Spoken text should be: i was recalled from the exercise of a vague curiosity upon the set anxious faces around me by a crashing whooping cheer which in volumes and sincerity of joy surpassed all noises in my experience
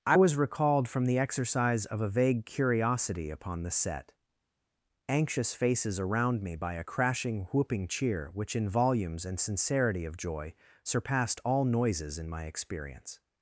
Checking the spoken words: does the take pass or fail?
pass